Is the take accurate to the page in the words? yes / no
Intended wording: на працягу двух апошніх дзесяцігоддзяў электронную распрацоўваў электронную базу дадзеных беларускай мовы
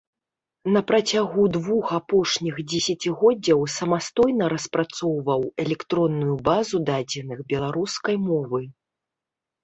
no